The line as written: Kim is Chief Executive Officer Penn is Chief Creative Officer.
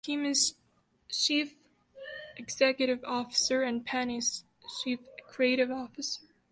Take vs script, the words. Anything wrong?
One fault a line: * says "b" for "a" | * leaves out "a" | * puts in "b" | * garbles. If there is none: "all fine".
* puts in "and"